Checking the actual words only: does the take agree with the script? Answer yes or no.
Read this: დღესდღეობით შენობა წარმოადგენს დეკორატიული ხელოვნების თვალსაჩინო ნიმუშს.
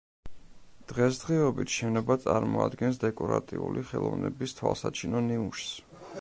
yes